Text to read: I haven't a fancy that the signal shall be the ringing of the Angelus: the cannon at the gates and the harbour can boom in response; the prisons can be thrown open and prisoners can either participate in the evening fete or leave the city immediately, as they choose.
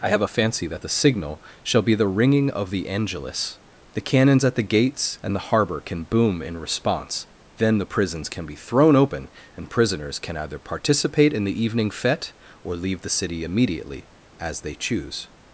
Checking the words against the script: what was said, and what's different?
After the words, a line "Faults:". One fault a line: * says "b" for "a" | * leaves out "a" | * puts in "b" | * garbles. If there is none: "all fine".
I have a fancy that the signal shall be the ringing of the Angelus: the cannons at the gates and the harbour can boom in response; then the prisons can be thrown open and prisoners can either participate in the evening fete or leave the city immediately, as they choose.
Faults:
* says "have" for "haven't"
* says "cannons" for "cannon"
* puts in "then"